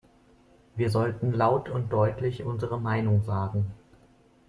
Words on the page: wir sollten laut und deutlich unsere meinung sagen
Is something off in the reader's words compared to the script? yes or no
no